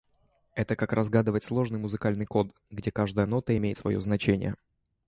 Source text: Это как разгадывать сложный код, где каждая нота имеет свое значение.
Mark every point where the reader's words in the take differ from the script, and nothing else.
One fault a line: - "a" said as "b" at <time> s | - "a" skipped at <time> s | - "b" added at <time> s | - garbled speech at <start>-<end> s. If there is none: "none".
- "музыкальный" added at 1.8 s